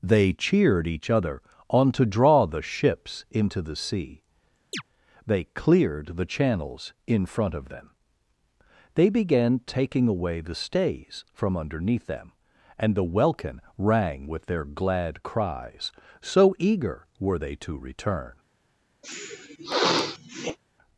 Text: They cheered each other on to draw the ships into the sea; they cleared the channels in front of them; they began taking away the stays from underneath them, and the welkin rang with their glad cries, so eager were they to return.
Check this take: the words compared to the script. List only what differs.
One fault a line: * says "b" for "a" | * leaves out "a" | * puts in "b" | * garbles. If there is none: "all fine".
all fine